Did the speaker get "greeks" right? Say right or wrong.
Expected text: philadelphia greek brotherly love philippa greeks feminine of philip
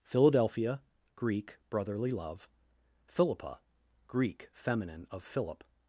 wrong